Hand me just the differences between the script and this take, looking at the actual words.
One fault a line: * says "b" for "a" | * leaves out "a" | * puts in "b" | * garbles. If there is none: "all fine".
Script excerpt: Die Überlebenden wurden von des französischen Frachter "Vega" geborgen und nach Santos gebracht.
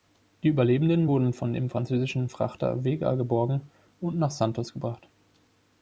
* says "dem" for "des"